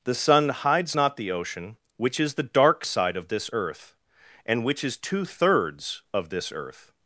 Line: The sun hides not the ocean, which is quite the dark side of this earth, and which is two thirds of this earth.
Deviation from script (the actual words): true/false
true